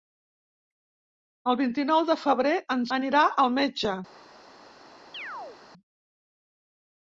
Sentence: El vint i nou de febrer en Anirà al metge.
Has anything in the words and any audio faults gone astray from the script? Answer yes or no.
yes